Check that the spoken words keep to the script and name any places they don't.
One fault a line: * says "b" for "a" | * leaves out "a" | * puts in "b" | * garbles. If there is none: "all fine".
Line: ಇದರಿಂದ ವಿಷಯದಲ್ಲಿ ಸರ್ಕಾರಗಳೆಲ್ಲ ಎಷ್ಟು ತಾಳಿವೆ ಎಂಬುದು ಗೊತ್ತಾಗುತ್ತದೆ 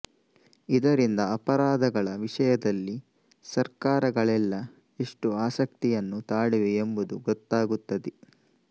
* puts in "ಅಪರಾಧಗಳ"
* puts in "ಆಸಕ್ತಿಯನ್ನು"